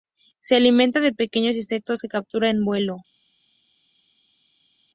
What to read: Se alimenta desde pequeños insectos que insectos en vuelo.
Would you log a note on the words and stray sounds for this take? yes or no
yes